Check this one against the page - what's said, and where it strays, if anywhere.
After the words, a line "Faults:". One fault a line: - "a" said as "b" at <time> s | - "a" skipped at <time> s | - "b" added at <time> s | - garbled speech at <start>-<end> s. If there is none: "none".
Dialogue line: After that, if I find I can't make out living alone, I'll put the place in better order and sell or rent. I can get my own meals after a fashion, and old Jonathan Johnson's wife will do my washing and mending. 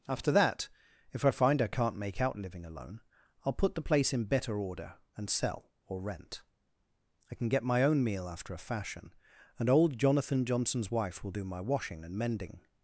After that, if I find I can't make out living alone, I'll put the place in better order and sell or rent. I can get my own meal after a fashion, and old Jonathan Johnson's wife will do my washing and mending.
Faults:
- "meals" said as "meal" at 8.0 s